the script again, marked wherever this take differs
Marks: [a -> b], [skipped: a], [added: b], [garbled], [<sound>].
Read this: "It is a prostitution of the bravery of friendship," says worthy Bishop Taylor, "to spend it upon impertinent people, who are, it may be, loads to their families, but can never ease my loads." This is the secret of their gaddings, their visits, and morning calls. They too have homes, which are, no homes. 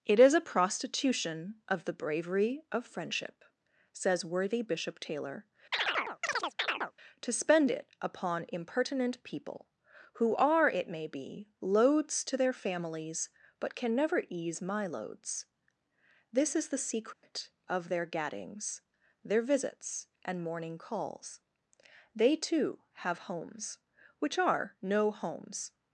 "It is a prostitution of the bravery of friendship," says worthy Bishop Taylor, [chirp] "to spend it upon impertinent people, who are, it may be, loads to their families, but can never ease my loads." This is the secret [dropout] of their gaddings, their visits, and morning calls. They too have homes, which are, no homes.